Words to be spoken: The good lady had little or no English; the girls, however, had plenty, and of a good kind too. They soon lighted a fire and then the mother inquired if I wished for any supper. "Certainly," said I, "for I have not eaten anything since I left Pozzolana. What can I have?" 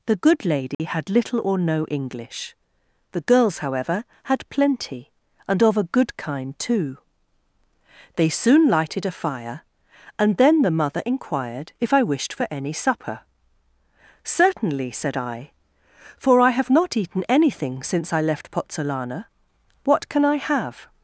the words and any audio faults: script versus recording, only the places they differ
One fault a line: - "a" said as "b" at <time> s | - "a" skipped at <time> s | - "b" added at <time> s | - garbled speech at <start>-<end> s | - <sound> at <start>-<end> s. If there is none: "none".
- dropout at 0.7-0.8 s